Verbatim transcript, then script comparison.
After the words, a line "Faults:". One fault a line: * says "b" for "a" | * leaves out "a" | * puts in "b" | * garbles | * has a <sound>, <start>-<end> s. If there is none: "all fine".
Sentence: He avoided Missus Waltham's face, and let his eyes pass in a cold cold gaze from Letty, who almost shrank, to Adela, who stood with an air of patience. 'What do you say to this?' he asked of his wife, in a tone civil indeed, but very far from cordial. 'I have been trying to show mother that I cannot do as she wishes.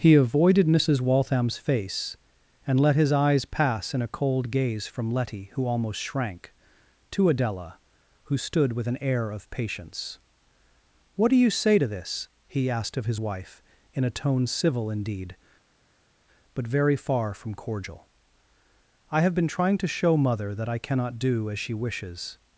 He avoided Missus Waltham's face, and let his eyes pass in a cold gaze from Letty, who almost shrank, to Adela, who stood with an air of patience. 'What do you say to this?' he asked of his wife, in a tone civil indeed, but very far from cordial. 'I have been trying to show mother that I cannot do as she wishes.
Faults:
* leaves out "cold"